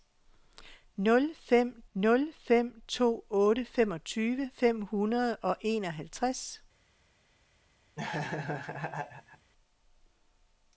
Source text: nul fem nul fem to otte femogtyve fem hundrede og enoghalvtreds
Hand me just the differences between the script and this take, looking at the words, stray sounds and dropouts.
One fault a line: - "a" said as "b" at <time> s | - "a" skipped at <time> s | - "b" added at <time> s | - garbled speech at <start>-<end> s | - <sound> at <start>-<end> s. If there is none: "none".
- laugh at 8.0-9.5 s